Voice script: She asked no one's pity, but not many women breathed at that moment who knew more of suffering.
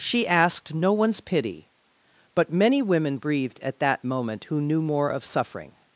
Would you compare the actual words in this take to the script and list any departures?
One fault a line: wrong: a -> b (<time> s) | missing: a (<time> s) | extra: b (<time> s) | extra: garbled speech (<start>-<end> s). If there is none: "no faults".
missing: not (2.5 s)